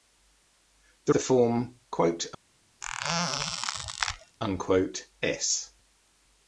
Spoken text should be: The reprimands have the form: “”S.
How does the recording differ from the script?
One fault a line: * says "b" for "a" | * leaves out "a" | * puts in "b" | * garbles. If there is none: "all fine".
* leaves out "reprimands have"